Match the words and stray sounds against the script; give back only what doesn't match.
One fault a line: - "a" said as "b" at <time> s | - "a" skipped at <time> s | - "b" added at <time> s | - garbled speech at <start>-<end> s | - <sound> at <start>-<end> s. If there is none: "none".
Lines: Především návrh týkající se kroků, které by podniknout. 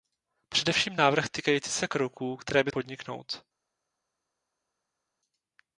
none